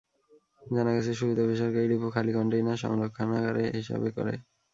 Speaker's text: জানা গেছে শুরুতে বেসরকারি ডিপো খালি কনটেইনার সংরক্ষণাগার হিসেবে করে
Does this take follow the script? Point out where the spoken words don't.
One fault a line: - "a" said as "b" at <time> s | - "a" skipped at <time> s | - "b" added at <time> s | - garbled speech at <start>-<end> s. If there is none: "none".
none